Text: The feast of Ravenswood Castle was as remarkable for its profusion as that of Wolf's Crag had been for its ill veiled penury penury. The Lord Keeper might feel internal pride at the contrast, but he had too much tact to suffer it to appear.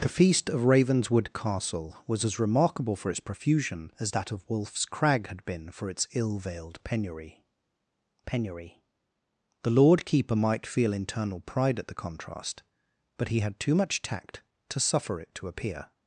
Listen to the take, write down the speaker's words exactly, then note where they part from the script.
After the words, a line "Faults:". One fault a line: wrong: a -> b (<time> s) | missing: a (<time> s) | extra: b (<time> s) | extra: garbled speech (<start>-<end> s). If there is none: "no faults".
The feast of Ravenswood Castle was as remarkable for its profusion as that of Wolf's Crag had been for its ill veiled penury penury. The Lord Keeper might feel internal pride at the contrast, but he had too much tact to suffer it to appear.
Faults:
no faults